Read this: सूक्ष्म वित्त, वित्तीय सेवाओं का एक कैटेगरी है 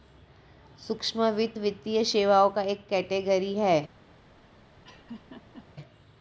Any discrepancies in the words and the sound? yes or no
yes